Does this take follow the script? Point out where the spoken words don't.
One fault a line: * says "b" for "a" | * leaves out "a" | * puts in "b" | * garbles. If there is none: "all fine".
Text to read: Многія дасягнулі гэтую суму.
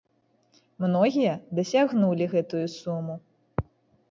all fine